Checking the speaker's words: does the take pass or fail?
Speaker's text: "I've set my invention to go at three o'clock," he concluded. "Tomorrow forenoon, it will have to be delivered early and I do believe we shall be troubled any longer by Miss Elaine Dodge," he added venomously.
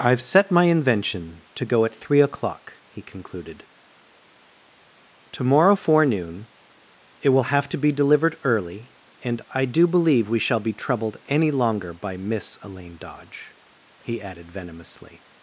pass